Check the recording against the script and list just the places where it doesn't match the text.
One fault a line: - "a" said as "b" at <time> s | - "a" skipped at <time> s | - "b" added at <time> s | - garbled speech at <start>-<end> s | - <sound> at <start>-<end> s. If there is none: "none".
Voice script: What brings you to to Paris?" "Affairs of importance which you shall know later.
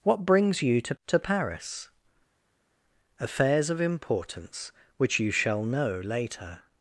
none